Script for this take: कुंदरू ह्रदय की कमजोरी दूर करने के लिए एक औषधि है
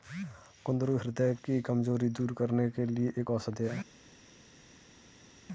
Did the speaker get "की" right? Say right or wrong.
right